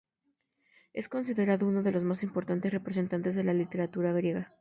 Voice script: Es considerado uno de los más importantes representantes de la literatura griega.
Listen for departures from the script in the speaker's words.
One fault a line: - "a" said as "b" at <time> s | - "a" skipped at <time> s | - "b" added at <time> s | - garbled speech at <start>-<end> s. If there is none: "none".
none